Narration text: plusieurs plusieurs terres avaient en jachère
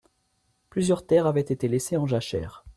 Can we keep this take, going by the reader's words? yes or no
no